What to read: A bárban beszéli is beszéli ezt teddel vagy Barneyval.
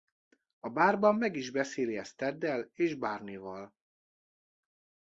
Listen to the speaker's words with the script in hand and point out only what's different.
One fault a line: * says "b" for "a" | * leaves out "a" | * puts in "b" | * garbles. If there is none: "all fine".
* says "meg" for "beszéli"
* says "és" for "vagy"